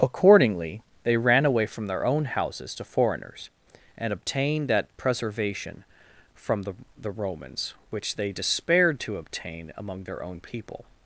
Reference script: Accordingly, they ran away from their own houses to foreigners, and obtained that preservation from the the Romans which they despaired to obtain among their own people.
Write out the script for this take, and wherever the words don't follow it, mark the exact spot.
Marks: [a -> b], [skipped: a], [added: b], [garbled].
Accordingly, they ran away from their own houses to foreigners, and obtained that preservation from the the Romans which they despaired to obtain among their own people.